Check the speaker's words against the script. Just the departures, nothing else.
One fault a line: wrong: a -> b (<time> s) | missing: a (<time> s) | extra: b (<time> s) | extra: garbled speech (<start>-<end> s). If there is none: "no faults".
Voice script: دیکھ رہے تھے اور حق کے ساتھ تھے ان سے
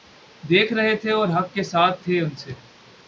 no faults